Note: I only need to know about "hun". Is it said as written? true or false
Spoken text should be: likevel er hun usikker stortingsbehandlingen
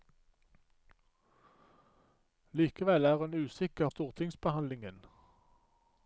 true